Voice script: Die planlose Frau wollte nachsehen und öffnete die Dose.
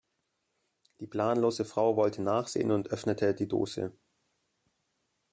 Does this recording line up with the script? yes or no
yes